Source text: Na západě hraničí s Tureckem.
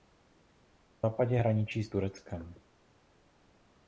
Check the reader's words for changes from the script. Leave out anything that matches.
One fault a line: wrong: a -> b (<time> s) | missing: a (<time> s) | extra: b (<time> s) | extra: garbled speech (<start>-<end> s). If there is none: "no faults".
no faults